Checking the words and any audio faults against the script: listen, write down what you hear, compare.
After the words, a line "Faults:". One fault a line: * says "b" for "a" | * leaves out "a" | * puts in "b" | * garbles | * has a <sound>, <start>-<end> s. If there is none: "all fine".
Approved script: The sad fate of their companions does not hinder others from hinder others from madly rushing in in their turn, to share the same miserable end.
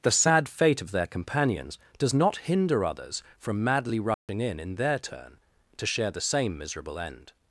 The sad fate of their companions does not hinder others from madly rushing in in their turn, to share the same miserable end.
Faults:
* leaves out "hinder others from"
* has a dropout, 4.1-4.3 s